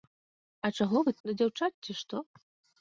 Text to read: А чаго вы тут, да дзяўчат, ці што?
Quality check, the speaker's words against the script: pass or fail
fail